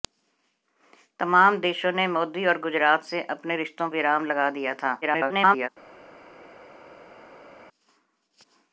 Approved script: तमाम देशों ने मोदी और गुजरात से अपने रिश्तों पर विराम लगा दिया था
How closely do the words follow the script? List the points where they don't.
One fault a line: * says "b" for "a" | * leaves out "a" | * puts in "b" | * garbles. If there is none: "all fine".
* leaves out "पर"
* garbles